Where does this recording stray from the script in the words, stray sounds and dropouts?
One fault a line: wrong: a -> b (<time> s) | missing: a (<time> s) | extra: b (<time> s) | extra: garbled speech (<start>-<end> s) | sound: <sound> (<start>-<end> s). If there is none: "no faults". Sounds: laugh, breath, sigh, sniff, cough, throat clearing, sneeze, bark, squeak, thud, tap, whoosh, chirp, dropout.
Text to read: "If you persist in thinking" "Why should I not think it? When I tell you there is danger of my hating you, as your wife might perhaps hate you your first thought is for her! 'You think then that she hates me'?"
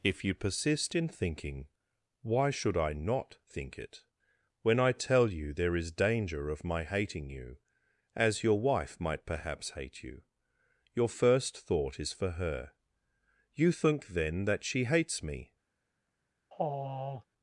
sound: sigh (16.5-17.2 s)